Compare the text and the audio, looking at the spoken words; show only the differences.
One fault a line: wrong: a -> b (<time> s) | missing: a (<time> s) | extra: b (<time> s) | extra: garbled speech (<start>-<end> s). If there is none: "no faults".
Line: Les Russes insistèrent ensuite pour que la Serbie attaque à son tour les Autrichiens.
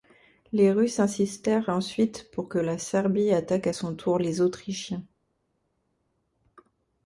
no faults